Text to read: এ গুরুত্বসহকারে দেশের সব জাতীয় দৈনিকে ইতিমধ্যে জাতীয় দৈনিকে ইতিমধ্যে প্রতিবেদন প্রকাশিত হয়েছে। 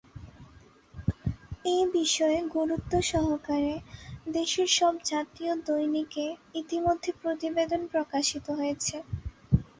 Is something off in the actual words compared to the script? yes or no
yes